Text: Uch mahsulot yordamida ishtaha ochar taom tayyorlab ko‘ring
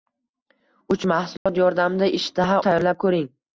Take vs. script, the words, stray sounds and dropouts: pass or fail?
fail